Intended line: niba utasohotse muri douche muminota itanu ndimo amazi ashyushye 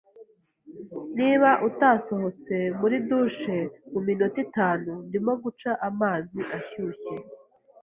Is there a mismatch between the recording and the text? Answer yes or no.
yes